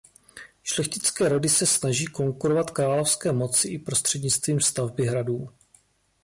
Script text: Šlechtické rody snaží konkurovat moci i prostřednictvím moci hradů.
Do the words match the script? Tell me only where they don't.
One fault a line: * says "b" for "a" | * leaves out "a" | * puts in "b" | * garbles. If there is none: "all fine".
* puts in "se"
* puts in "královské"
* says "stavby" for "moci"